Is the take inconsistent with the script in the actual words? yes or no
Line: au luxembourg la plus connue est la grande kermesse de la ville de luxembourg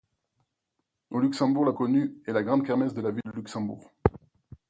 yes